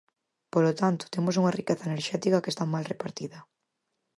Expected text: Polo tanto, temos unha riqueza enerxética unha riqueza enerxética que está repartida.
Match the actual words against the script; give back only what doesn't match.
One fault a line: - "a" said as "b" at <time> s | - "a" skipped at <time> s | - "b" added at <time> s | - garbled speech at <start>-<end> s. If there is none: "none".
- "unha riqueza enerxética" skipped at 2.4 s
- "mal" added at 2.7 s